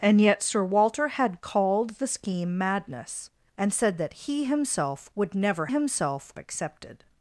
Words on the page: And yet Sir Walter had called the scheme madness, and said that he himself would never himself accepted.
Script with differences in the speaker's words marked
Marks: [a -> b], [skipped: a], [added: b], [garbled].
And yet Sir Walter had called the scheme madness, and said that he himself would never himself accepted.